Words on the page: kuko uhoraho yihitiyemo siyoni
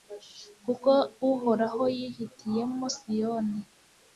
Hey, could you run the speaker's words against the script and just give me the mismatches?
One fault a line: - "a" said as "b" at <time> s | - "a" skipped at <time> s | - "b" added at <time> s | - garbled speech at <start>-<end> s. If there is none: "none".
none